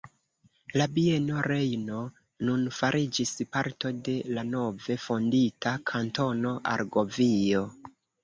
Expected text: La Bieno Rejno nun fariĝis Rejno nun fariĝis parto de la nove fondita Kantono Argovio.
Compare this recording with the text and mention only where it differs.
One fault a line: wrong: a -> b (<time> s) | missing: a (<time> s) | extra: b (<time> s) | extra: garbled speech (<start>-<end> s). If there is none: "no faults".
missing: Rejno nun fariĝis (3.3 s)